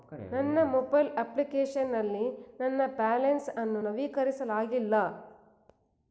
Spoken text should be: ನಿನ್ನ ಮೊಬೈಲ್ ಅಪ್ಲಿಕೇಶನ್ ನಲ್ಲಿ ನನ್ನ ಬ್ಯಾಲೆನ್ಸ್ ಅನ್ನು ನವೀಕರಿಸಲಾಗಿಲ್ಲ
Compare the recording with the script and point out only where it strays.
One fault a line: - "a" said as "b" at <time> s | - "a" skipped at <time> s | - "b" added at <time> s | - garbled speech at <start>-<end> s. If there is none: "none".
- "ನಿನ್ನ" said as "ನನ್ನ" at 0.3 s